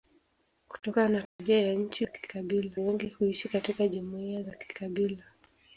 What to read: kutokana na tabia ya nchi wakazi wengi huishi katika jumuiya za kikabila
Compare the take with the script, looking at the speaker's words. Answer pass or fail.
fail